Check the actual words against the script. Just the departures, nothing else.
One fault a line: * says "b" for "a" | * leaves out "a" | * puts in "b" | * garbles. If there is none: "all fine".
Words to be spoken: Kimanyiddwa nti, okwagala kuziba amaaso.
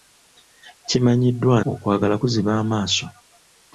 * leaves out "nti"